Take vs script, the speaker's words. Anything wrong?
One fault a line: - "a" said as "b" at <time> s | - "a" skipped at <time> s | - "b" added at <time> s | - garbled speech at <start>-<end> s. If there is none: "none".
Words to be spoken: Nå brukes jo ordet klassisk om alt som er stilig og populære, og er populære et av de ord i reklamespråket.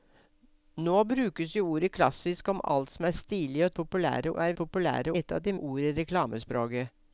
none